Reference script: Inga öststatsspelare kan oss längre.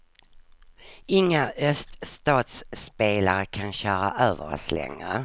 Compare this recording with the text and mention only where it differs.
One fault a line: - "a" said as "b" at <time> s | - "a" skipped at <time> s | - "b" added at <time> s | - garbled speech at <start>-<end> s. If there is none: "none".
- "köra över" added at 3.7 s